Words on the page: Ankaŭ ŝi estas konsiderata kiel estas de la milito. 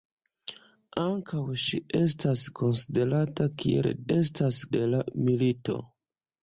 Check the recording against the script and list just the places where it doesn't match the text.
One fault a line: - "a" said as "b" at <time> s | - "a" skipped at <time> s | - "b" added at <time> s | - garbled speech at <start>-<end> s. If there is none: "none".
none